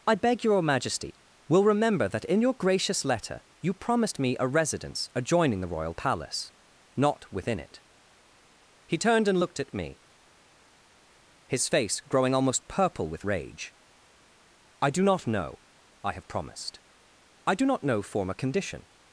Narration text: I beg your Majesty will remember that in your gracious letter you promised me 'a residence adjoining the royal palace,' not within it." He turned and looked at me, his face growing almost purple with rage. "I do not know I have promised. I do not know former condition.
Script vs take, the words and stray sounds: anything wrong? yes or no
no